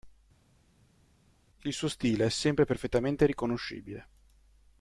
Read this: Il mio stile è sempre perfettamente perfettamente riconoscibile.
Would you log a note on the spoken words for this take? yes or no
yes